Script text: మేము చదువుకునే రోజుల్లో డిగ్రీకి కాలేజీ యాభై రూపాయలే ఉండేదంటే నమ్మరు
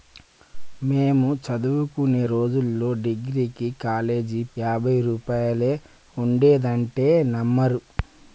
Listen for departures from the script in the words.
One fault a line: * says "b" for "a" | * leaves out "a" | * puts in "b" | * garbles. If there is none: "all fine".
all fine